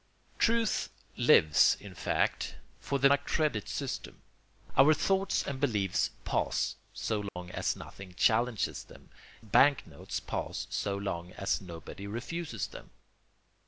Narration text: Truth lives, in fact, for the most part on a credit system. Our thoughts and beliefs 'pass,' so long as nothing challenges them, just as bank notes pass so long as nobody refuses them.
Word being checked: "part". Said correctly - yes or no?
no